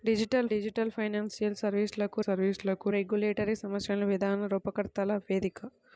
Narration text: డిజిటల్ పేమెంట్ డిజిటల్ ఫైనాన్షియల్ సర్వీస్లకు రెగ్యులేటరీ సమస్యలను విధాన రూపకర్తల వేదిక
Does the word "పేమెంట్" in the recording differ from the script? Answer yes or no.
yes